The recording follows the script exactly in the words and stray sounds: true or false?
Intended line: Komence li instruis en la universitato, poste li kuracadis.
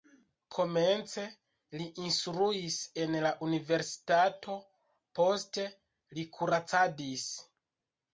true